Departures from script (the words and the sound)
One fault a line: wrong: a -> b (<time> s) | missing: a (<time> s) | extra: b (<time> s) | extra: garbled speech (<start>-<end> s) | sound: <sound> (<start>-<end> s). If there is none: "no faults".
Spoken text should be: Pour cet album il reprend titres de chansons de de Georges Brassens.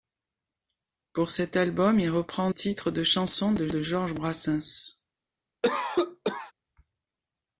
sound: cough (5.6-6.5 s)